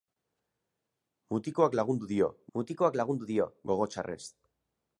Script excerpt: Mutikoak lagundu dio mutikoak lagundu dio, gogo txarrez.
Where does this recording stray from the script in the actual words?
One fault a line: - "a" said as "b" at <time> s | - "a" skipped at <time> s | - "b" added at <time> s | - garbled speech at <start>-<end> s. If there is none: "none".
none